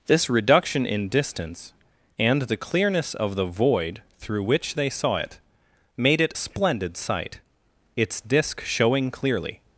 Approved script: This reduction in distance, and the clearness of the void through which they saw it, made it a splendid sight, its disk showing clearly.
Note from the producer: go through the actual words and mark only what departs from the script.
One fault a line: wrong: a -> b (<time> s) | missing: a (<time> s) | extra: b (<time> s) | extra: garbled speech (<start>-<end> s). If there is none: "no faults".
missing: a (6.3 s)